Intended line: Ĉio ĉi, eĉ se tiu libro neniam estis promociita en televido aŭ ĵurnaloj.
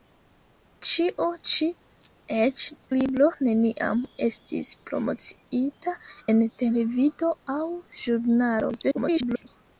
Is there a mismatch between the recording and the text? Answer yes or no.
yes